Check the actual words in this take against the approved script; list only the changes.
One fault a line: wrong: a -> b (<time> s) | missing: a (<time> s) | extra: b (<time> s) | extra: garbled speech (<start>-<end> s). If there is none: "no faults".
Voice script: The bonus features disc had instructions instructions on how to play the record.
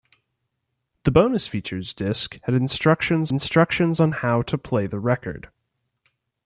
no faults